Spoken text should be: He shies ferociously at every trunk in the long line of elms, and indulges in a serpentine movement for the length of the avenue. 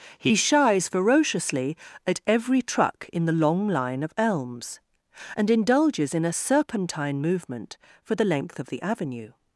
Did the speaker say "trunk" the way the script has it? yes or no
no